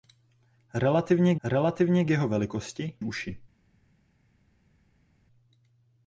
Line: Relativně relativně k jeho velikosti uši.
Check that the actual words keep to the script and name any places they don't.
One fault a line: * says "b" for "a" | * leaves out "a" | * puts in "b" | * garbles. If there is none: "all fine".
all fine